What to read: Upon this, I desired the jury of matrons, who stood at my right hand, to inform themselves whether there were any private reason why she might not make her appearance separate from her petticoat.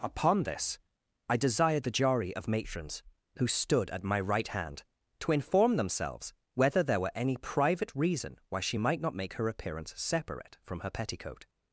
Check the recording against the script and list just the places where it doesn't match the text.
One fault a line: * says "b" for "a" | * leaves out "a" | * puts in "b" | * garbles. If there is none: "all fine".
all fine